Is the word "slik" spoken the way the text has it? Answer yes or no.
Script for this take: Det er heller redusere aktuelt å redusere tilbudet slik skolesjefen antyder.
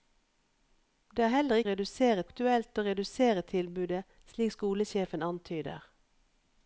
yes